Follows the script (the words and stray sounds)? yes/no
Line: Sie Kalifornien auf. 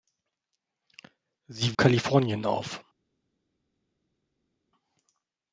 yes